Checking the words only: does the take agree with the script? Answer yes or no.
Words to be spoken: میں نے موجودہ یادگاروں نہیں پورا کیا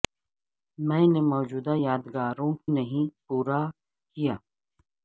yes